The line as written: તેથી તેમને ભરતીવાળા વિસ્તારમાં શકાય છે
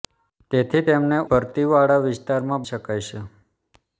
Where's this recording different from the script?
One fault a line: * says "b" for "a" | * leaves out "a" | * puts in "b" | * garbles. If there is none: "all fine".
all fine